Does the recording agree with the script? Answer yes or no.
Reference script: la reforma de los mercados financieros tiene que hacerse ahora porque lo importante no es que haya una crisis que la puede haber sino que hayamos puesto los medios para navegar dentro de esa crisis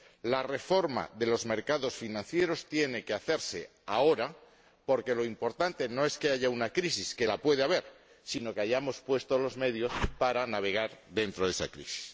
yes